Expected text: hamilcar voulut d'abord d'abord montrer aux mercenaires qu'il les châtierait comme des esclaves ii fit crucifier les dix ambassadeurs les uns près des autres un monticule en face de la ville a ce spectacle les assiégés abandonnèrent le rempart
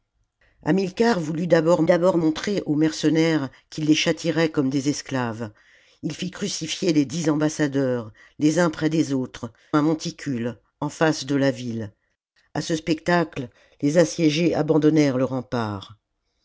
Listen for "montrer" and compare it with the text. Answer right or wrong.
right